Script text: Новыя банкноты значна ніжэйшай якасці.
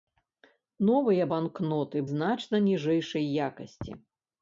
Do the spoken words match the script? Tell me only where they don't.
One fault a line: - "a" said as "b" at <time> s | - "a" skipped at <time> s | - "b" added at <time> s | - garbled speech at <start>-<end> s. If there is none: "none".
none